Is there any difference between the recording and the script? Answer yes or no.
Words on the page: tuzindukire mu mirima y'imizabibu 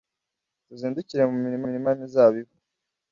yes